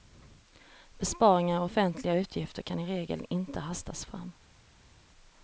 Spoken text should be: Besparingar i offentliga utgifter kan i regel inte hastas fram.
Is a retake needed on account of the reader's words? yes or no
no